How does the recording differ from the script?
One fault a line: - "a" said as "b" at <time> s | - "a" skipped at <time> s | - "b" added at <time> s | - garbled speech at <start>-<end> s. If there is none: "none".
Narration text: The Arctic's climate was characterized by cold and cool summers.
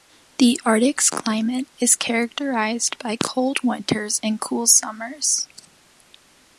- "was" said as "is" at 1.8 s
- "winters" added at 3.6 s